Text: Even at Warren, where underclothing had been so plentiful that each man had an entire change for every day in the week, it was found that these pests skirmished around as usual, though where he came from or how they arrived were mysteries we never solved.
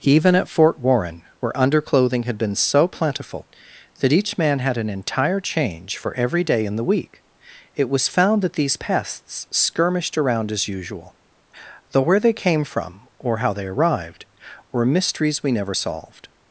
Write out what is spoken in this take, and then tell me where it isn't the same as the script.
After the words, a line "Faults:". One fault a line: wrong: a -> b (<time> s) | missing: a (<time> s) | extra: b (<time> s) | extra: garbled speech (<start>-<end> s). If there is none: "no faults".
Even at Fort Warren, where underclothing had been so plentiful that each man had an entire change for every day in the week, it was found that these pests skirmished around as usual, though where they came from or how they arrived were mysteries we never solved.
Faults:
extra: Fort (0.5 s)
wrong: he -> they (12.2 s)